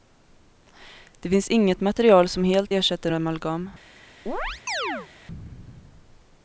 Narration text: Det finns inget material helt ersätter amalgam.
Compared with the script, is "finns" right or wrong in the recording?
right